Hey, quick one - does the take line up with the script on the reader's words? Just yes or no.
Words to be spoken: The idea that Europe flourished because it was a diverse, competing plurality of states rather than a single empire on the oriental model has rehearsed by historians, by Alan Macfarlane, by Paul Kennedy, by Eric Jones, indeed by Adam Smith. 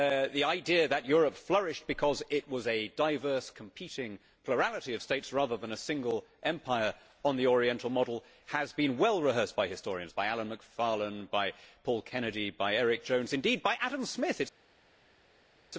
no